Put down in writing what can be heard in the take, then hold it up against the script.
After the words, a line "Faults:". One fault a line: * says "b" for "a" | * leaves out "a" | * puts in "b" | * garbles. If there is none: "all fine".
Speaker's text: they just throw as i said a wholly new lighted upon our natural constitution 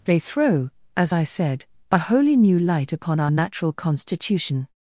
they throw as i said a wholly new light upon our natural constitution
Faults:
* leaves out "just"
* says "light" for "lighted"